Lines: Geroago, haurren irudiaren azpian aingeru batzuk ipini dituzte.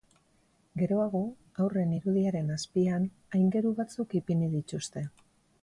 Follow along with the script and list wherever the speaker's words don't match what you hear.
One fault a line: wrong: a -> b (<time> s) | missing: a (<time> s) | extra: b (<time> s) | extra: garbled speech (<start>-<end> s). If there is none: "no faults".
no faults